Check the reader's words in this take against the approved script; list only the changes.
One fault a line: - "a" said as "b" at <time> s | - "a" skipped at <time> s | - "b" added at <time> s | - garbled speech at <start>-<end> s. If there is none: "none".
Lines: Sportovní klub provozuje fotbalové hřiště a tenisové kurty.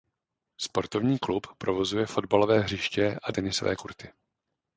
none